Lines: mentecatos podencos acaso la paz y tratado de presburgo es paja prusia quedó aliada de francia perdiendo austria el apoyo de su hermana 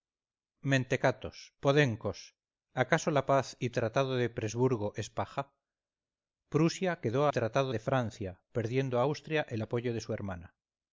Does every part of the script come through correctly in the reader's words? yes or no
no